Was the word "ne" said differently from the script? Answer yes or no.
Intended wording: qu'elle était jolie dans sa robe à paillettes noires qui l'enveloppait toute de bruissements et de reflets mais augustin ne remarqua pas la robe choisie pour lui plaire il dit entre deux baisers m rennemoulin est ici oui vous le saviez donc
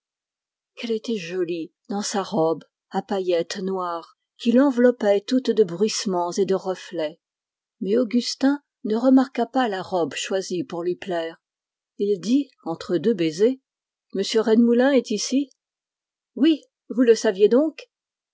no